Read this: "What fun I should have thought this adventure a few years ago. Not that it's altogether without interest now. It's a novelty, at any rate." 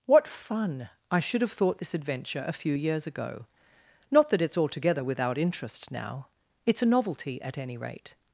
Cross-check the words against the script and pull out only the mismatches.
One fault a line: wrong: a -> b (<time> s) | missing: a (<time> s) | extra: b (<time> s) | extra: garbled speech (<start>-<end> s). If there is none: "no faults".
no faults